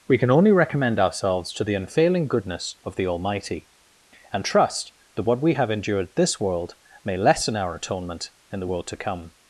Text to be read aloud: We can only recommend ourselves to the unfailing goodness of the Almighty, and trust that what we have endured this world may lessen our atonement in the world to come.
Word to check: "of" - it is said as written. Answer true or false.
true